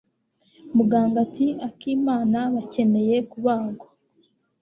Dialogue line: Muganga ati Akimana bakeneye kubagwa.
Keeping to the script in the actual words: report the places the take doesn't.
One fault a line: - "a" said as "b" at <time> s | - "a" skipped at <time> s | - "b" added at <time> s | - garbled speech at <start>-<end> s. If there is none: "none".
none